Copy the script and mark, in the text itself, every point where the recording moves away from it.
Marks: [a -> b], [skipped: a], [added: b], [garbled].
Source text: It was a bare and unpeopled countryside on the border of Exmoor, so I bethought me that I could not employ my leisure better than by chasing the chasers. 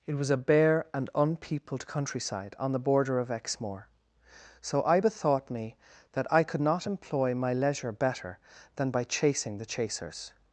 It was a bare and unpeopled countryside on the border of Exmoor, so I bethought me that I could not employ my leisure better than by chasing the chasers.